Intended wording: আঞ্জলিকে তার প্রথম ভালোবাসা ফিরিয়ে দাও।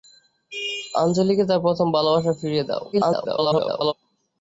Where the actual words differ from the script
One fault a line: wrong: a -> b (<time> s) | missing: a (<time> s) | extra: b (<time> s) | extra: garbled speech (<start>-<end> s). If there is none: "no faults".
extra: garbled speech (2.9-3.9 s)